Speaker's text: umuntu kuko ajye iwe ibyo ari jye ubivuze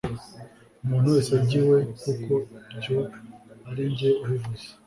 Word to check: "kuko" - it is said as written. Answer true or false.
false